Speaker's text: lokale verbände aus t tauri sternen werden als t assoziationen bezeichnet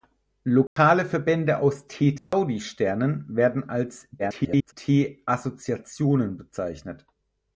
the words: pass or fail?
fail